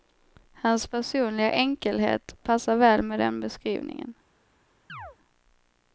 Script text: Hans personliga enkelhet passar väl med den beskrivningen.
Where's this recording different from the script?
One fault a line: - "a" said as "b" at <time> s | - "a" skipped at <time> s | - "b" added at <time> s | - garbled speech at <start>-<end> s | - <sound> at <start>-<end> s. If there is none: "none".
- chirp at 4.9-5.2 s